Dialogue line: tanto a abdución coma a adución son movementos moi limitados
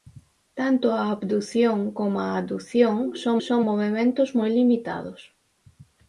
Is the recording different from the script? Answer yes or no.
yes